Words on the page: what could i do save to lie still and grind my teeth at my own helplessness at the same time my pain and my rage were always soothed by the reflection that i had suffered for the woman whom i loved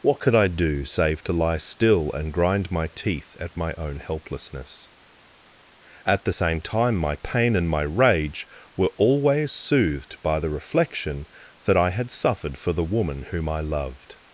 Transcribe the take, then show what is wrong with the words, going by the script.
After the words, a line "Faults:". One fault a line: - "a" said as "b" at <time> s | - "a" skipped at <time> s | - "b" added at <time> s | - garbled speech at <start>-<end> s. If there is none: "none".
what could i do save to lie still and grind my teeth at my own helplessness at the same time my pain and my rage were always soothed by the reflection that i had suffered for the woman whom i loved
Faults:
none